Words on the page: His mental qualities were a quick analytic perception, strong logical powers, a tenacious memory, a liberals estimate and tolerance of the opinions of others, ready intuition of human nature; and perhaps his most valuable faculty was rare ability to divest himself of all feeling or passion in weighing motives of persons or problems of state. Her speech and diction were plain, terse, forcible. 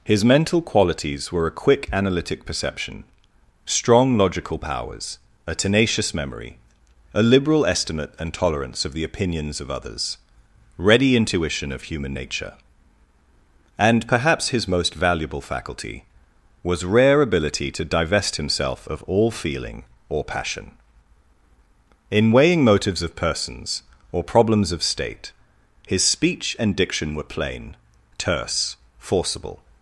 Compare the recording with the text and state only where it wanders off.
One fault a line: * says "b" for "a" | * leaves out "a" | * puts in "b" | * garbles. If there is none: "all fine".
* says "liberal" for "liberals"
* says "His" for "Her"